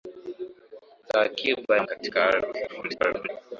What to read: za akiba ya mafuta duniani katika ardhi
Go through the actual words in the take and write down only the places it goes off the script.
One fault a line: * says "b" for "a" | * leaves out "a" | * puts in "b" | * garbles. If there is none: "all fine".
* leaves out "mafuta duniani"
* garbles